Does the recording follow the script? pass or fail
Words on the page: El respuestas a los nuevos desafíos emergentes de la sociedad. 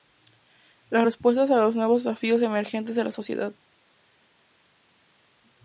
fail